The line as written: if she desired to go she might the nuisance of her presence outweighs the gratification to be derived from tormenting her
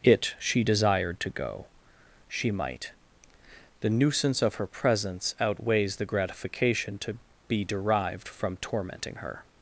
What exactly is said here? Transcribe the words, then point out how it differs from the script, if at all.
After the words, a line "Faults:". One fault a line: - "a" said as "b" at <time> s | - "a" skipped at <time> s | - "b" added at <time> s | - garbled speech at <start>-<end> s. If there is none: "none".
it she desired to go she might the nuisance of her presence outweighs the gratification to be derived from tormenting her
Faults:
- "if" said as "it" at 0.0 s